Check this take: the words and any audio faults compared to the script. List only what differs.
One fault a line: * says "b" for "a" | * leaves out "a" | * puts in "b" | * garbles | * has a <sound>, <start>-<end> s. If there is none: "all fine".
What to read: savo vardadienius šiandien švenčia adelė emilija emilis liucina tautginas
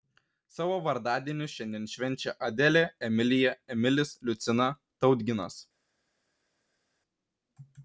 all fine